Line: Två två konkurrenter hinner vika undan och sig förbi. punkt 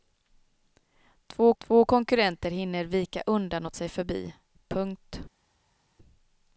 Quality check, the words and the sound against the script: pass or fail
pass